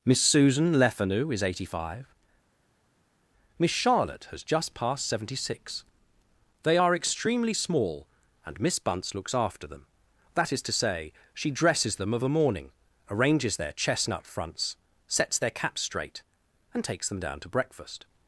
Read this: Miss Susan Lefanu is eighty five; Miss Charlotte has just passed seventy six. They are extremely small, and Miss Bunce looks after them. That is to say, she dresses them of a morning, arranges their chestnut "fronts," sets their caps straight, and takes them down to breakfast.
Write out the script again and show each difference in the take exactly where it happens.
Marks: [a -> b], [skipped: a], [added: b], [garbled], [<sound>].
Miss Susan Lefanu is eighty five; Miss Charlotte has just passed seventy six. They are extremely small, and Miss Bunce looks after them. That is to say, she dresses them of a morning, arranges their chestnut "fronts," sets their caps straight, and takes them down to breakfast.